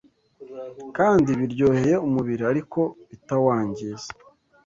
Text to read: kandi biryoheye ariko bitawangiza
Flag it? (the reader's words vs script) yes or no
yes